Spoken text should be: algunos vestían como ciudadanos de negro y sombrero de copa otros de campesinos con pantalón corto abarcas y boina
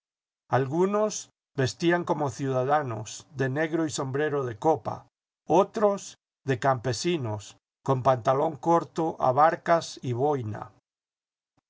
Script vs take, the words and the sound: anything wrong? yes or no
no